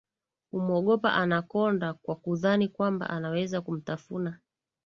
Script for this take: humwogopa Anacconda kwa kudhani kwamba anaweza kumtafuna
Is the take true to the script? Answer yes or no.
yes